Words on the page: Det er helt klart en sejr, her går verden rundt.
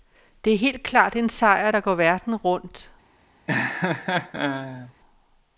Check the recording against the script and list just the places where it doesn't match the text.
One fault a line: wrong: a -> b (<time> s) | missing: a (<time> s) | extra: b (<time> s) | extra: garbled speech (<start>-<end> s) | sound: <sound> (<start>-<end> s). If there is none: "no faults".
wrong: her -> der (1.7 s)
sound: laugh (3.5-4.9 s)